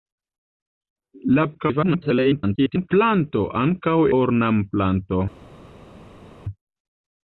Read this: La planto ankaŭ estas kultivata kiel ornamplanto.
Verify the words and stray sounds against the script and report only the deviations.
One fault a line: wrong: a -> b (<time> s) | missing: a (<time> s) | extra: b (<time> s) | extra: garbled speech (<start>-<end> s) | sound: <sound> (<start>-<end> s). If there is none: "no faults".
extra: garbled speech (1.5-2.9 s)
missing: estas kultivata kiel (4.0 s)